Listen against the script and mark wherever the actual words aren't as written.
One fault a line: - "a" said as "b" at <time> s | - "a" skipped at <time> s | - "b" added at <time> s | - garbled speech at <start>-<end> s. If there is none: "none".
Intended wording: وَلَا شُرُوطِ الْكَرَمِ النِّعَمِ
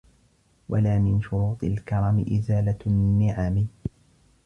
- "مِنْ" added at 1.0 s
- "إزَالَةُ" added at 2.4 s